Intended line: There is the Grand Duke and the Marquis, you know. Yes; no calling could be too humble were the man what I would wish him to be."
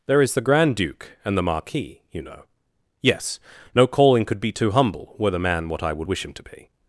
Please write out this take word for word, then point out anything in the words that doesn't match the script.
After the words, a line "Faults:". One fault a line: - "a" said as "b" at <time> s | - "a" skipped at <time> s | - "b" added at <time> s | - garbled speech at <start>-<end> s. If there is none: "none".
There is the Grand Duke and the Marquis, you know. Yes; no calling could be too humble were the man what I would wish him to be."
Faults:
none